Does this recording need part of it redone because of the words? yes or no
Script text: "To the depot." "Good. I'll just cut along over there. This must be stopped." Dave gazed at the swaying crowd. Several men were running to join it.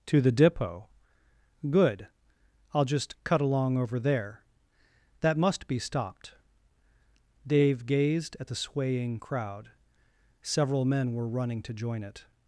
yes